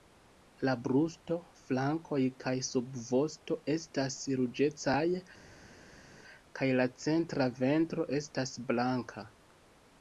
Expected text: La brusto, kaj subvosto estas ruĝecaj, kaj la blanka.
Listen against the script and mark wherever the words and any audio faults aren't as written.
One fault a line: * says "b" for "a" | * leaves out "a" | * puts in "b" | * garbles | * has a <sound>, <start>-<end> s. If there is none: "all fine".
* puts in "flankoj"
* puts in "centra ventro estas"